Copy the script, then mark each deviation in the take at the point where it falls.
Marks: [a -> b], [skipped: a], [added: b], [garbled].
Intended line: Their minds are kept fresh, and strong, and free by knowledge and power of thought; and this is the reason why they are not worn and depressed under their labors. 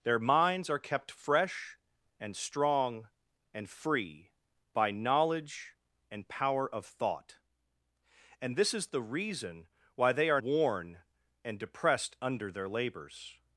Their minds are kept fresh, and strong, and free by knowledge and power of thought; and this is the reason why they are [skipped: not] worn and depressed under their labors.